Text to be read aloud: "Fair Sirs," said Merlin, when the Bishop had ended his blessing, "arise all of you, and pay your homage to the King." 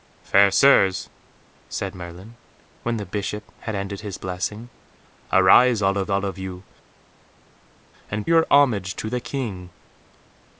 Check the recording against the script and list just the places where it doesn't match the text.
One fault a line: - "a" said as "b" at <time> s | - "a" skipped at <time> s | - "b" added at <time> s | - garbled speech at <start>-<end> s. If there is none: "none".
- "all of" added at 6.1 s
- "pay" skipped at 8.3 s